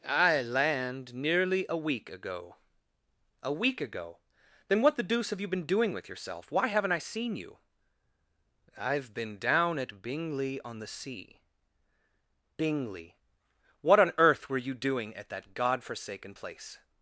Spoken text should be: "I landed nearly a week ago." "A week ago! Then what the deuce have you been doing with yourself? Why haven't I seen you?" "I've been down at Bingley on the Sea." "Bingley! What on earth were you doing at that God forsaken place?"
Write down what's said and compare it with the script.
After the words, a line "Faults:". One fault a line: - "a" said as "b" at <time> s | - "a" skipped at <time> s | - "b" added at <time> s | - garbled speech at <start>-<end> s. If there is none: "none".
"I land nearly a week ago." "A week ago! Then what the deuce have you been doing with yourself? Why haven't I seen you?" "I've been down at Bingley on the Sea." "Bingley! What on earth were you doing at that God forsaken place?"
Faults:
- "landed" said as "land" at 0.4 s